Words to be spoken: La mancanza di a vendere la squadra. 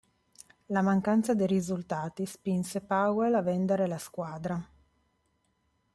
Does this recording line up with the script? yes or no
no